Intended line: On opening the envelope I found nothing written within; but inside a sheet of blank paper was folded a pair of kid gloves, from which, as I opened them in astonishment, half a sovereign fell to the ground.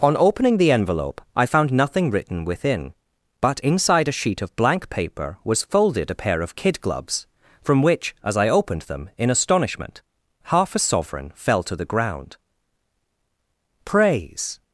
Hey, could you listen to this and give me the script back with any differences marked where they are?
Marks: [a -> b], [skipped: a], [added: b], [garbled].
On opening the envelope I found nothing written within; but inside a sheet of blank paper was folded a pair of kid gloves, from which, as I opened them in astonishment, half a sovereign fell to the ground. [added: Praise]